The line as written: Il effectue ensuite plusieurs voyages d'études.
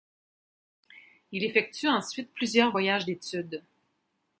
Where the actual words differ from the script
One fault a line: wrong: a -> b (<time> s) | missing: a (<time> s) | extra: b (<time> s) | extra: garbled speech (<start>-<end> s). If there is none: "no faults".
no faults